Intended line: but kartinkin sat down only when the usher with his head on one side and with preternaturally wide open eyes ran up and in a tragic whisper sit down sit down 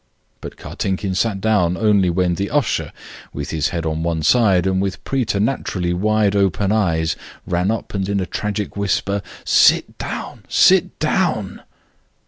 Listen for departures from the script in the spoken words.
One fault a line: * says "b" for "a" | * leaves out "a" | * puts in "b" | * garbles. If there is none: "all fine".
all fine